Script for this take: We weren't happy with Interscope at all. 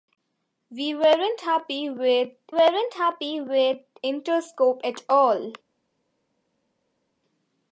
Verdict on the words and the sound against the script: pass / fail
fail